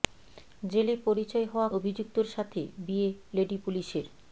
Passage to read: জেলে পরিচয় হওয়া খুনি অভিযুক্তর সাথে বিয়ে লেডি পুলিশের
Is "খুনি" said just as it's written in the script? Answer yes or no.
no